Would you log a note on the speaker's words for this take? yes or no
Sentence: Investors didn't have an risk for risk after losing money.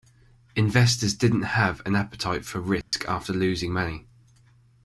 yes